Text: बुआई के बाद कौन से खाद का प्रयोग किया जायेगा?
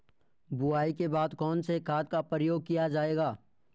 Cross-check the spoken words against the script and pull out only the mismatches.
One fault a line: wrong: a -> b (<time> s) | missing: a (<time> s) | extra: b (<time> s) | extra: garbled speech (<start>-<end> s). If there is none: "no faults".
no faults